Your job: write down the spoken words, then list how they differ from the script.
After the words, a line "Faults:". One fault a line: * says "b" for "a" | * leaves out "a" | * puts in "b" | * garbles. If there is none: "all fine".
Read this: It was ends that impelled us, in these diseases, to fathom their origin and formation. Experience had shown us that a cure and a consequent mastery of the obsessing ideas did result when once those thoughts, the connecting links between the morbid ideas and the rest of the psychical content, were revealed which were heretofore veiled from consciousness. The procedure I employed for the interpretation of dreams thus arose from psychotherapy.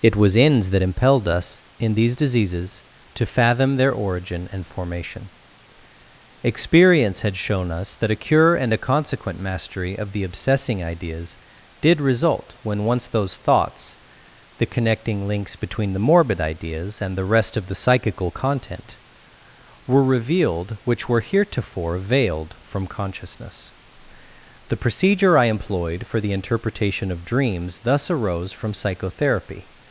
It was ends that impelled us, in these diseases, to fathom their origin and formation. Experience had shown us that a cure and a consequent mastery of the obsessing ideas did result when once those thoughts, the connecting links between the morbid ideas and the rest of the psychical content, were revealed which were heretofore veiled from consciousness. The procedure I employed for the interpretation of dreams thus arose from psychotherapy.
Faults:
all fine